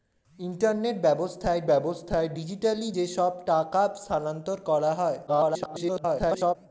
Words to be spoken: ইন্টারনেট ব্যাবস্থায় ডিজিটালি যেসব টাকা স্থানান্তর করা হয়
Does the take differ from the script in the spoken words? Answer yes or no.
yes